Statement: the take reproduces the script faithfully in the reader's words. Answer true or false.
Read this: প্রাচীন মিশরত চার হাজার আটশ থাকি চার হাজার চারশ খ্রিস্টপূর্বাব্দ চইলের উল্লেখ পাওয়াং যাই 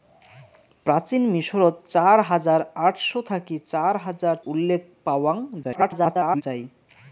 false